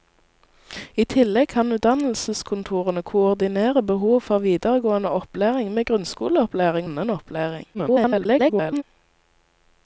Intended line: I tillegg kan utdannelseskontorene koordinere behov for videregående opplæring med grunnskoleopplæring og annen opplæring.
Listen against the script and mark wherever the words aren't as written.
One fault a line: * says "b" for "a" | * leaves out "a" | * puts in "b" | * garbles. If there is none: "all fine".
* leaves out "og"
* garbles